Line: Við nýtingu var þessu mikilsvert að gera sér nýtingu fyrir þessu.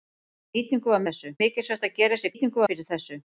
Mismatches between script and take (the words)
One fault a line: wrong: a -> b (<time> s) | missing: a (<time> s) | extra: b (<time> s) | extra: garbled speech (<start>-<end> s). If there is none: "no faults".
no faults